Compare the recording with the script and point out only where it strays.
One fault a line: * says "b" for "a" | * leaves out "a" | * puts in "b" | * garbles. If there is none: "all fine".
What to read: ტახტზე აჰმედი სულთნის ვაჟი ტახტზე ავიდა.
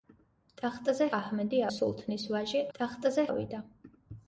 all fine